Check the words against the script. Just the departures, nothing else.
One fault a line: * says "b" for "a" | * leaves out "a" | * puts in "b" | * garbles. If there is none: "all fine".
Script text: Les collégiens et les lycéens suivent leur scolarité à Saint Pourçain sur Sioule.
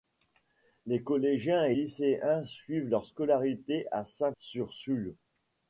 * leaves out "les"
* leaves out "Pourçain"